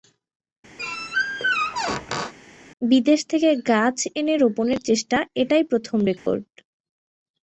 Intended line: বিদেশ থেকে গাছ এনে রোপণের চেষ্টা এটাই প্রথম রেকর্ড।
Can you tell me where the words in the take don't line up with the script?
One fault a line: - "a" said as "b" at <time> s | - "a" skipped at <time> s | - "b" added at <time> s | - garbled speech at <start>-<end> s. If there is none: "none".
none